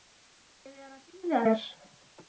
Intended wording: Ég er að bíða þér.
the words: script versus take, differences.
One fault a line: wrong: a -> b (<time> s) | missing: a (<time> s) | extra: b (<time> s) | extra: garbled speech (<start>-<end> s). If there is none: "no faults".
no faults